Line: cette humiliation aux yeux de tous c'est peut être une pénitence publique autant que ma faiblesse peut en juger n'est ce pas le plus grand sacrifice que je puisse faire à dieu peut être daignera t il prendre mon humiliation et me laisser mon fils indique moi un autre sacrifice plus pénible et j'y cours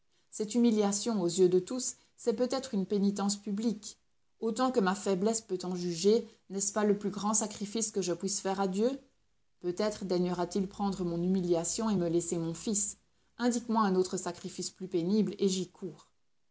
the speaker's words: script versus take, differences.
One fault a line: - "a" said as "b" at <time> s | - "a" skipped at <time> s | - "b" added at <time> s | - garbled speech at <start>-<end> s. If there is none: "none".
none